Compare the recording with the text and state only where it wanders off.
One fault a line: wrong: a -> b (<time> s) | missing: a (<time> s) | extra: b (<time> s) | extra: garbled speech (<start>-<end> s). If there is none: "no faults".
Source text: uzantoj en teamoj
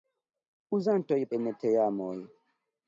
no faults